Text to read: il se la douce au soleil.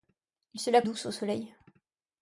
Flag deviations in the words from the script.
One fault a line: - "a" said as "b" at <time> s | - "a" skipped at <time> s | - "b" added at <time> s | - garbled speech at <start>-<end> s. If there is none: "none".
none